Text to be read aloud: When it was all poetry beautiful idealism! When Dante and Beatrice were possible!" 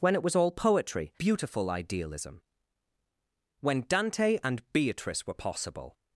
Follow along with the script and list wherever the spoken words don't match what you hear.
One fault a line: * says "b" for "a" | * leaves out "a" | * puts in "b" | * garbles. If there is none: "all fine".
all fine